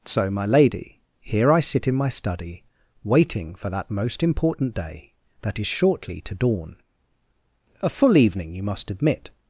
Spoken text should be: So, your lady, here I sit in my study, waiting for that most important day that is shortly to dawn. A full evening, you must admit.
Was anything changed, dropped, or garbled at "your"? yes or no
yes